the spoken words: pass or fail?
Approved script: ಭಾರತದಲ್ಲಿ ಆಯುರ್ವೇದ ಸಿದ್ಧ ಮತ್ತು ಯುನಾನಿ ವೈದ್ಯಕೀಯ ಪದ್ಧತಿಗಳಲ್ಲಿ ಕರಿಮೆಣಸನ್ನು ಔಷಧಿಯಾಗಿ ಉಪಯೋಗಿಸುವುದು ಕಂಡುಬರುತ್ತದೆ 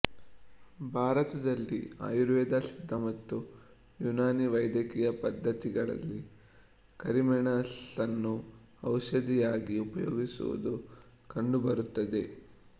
pass